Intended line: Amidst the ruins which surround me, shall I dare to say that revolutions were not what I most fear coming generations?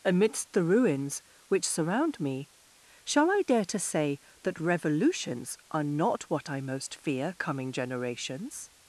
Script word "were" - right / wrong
wrong